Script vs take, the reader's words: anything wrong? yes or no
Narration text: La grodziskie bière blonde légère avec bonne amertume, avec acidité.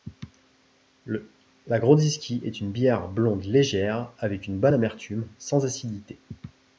yes